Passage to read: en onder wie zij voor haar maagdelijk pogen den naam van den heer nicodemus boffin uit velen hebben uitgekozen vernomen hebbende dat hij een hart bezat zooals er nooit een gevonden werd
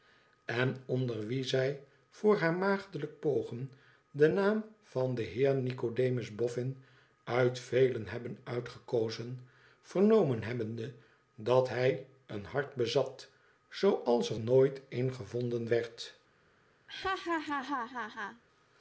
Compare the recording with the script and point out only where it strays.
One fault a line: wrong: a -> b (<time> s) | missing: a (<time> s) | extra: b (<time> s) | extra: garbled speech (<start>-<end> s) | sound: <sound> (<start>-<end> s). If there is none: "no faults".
sound: laugh (16.9-18.4 s)